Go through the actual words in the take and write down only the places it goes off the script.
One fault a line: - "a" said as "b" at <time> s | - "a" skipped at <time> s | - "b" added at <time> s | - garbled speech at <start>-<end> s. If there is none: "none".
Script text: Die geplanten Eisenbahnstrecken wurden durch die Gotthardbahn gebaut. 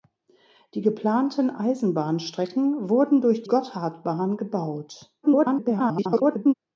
- "die" skipped at 3.4 s
- garbled speech at 5.2-6.5 s